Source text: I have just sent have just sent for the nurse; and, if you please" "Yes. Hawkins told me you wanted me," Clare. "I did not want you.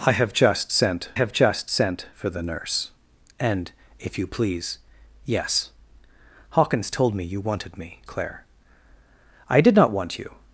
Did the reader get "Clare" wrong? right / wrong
right